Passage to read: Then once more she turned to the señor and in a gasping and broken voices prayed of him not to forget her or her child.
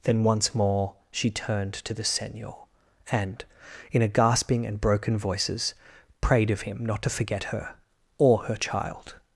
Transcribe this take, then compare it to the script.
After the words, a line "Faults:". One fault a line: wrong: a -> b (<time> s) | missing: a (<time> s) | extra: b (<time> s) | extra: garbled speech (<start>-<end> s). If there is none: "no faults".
Then once more she turned to the señor and in a gasping and broken voices prayed of him not to forget her or her child.
Faults:
no faults